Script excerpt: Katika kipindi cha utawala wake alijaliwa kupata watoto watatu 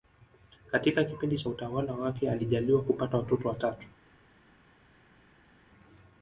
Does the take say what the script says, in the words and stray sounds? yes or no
yes